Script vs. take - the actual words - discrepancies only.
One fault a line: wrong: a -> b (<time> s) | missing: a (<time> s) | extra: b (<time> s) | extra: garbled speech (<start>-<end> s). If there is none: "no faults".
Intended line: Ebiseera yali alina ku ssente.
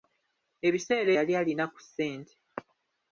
no faults